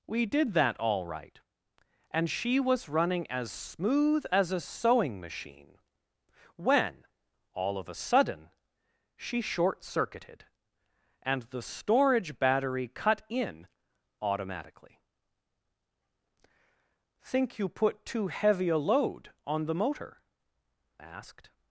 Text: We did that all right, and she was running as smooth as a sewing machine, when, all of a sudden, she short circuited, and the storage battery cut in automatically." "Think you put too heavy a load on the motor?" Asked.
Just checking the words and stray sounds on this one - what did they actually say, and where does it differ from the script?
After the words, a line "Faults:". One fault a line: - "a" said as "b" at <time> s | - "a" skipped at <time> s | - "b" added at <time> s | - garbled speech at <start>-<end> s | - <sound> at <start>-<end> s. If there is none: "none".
We did that all right, and she was running as smooth as a sewing machine, when, all of a sudden, she short circuited, and the storage battery cut in automatically." "Think you put too heavy a load on the motor?" Asked.
Faults:
none